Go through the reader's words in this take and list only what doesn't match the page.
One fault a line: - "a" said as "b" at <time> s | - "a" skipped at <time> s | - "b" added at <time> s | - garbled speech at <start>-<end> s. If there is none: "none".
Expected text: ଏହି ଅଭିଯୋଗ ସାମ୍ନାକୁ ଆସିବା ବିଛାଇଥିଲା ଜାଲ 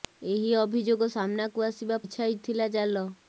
none